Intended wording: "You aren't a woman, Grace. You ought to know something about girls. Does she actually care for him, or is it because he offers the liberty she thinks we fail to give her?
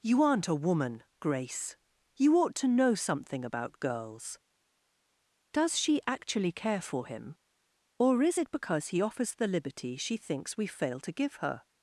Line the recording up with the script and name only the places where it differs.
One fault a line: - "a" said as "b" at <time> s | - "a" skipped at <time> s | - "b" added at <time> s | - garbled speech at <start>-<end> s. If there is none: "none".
none